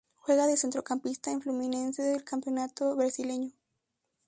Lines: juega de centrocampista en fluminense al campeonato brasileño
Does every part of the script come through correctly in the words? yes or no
no